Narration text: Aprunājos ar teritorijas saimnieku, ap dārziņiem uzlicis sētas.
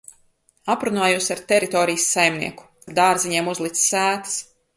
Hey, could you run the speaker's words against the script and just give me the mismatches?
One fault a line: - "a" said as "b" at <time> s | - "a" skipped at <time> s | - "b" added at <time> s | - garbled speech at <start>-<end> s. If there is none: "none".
none